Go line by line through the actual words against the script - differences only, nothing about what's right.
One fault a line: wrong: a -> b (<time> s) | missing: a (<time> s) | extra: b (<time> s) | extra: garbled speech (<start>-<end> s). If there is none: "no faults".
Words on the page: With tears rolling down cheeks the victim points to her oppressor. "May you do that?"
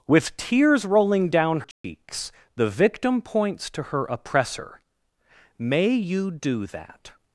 no faults